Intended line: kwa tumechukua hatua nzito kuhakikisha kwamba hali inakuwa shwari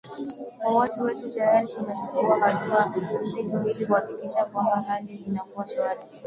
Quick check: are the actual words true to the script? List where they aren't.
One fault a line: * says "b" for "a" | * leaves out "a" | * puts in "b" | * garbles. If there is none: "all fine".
* puts in "watu wetu tayari"
* puts in "ili"